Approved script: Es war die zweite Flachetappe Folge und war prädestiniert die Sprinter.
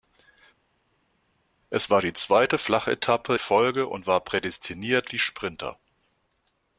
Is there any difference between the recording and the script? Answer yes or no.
no